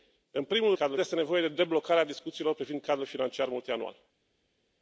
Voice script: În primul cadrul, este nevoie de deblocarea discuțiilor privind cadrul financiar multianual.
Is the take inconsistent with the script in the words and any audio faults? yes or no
no